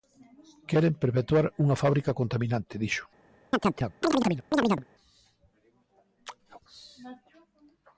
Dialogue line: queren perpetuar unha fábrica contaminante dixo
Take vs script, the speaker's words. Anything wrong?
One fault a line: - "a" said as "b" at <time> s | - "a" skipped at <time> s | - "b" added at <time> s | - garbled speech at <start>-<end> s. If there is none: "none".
none